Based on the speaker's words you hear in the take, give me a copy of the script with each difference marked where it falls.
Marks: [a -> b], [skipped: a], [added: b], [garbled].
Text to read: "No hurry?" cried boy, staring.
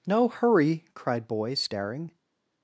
"No hurry?" cried boy, staring.